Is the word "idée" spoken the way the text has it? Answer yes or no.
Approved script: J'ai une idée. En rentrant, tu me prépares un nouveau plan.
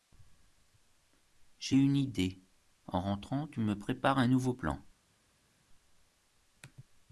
yes